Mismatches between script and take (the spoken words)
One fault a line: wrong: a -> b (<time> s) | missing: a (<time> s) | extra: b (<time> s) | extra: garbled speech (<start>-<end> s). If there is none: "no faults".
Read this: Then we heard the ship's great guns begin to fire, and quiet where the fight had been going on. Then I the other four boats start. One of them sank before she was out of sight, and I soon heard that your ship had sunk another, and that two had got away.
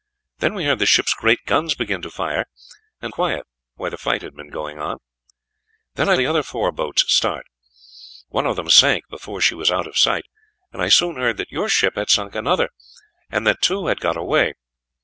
no faults